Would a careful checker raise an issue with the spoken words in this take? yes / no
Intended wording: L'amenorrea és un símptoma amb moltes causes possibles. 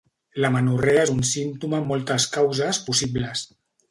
no